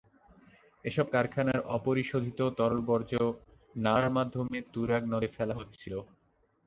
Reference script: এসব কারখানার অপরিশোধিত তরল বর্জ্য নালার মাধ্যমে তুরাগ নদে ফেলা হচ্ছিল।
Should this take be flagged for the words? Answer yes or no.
no